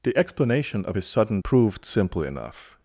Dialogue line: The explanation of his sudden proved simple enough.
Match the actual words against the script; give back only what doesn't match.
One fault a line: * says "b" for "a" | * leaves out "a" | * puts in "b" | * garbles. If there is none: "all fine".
all fine